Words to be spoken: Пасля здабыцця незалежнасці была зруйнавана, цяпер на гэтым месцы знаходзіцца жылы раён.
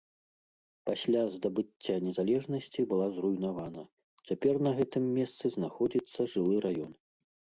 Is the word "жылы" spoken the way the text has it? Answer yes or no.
yes